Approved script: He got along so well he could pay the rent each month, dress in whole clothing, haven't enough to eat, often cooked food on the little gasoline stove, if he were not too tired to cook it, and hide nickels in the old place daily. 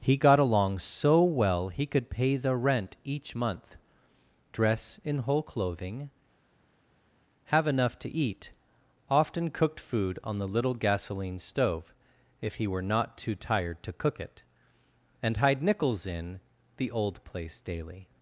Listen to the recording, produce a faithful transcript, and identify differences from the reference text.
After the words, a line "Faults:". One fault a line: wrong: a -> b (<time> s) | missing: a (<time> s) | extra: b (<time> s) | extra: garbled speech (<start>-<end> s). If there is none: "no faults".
He got along so well he could pay the rent each month, dress in whole clothing, have enough to eat, often cooked food on the little gasoline stove, if he were not too tired to cook it, and hide nickels in the old place daily.
Faults:
wrong: haven't -> have (7.4 s)